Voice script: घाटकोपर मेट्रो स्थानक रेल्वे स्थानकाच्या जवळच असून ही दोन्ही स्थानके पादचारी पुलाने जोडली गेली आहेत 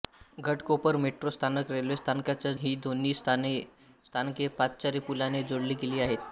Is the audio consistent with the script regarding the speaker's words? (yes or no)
no